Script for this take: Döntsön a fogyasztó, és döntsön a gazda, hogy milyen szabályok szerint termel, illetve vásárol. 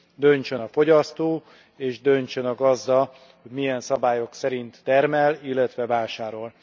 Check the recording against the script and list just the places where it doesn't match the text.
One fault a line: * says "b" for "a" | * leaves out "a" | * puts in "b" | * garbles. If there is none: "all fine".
all fine